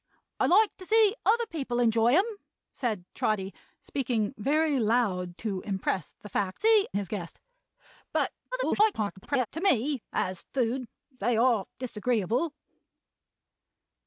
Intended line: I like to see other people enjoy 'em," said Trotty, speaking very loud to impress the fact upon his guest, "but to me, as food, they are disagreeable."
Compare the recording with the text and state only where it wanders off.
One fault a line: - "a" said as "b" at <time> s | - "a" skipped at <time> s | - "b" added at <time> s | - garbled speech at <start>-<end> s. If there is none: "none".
- "upon" said as "see" at 6.6 s
- garbled speech at 8.5-9.5 s